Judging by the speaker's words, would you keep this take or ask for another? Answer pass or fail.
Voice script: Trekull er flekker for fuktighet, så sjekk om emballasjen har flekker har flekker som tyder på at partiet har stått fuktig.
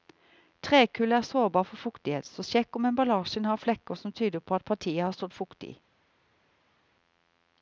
fail